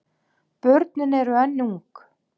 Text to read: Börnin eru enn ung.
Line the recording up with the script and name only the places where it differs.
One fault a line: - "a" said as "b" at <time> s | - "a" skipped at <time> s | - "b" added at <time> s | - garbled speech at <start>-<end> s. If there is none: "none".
none